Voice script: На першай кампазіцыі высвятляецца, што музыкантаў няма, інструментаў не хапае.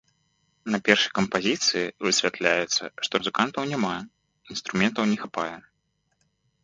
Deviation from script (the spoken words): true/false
false